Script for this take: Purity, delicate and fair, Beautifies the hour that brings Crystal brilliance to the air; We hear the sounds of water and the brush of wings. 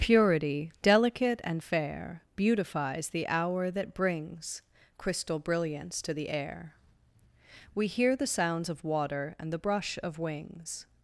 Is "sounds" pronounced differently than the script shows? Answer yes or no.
no